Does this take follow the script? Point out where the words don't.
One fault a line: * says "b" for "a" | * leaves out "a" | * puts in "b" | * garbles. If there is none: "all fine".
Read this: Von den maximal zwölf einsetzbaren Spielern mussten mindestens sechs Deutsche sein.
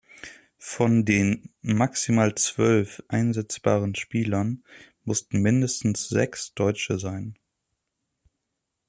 all fine